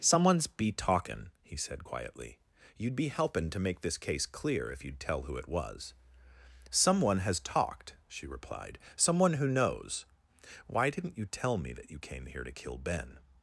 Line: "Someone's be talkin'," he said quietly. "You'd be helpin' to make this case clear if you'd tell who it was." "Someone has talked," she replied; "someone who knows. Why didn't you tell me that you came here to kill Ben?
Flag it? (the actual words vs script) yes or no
no